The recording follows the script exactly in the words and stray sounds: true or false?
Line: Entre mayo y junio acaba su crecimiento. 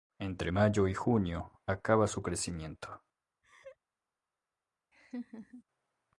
false